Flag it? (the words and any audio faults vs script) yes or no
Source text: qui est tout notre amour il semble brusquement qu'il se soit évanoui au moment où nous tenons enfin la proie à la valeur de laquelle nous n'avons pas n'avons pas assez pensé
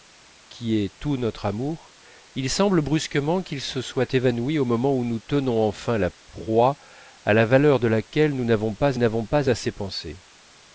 no